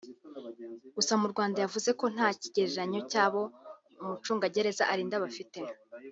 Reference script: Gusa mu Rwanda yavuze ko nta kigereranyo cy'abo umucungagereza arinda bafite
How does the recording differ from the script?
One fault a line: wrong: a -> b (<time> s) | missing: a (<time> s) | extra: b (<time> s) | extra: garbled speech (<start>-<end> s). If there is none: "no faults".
no faults